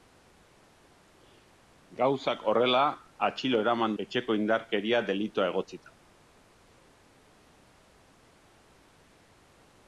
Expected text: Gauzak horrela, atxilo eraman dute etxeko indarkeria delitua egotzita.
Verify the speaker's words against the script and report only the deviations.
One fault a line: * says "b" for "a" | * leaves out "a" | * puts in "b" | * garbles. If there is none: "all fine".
* leaves out "dute"